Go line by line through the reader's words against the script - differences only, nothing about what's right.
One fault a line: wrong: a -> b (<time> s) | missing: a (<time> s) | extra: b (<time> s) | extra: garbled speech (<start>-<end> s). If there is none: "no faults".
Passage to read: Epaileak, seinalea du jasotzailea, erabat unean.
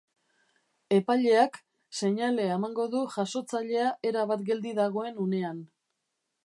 extra: emango (2.6 s)
extra: geldi dagoen (4.5 s)